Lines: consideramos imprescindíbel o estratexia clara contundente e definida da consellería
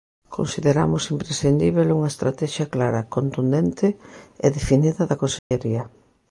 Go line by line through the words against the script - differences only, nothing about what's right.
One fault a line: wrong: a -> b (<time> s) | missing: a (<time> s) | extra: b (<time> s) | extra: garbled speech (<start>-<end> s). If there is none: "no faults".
wrong: o -> unha (2.0 s)